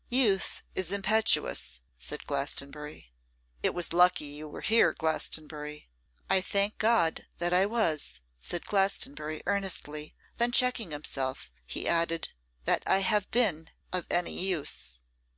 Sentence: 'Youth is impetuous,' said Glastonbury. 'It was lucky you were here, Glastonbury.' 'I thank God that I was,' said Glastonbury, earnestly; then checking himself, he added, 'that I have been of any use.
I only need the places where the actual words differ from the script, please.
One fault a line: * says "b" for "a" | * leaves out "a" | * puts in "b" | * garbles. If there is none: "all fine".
all fine